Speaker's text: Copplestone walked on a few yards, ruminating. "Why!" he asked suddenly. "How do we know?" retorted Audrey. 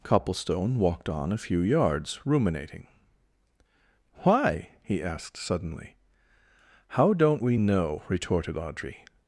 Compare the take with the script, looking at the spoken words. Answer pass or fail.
fail